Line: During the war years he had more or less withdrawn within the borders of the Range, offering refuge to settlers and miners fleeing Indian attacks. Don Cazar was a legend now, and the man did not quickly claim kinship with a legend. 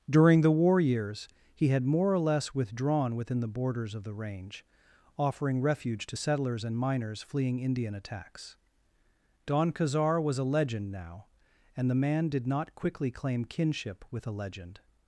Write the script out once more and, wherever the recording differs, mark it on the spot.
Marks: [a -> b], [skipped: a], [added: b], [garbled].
During the war years he had more or less withdrawn within the borders of the Range, offering refuge to settlers and miners fleeing Indian attacks. Don Cazar was a legend now, and the man did not quickly claim kinship with a legend.